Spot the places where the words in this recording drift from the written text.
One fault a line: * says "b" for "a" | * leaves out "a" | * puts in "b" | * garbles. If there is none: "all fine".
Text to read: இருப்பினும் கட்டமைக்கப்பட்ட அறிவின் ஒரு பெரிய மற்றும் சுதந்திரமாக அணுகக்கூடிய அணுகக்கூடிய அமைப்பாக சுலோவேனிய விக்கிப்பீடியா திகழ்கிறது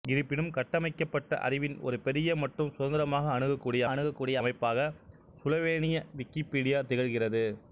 all fine